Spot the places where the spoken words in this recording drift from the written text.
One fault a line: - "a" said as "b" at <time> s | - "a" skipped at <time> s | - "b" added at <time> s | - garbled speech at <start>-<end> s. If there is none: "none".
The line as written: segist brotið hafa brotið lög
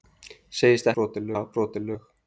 none